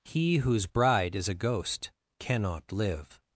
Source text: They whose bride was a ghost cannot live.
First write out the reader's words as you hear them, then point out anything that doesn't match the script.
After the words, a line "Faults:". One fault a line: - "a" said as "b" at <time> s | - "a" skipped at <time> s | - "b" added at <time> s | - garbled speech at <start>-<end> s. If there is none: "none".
He whose bride is a ghost cannot live.
Faults:
- "They" said as "He" at 0.0 s
- "was" said as "is" at 1.1 s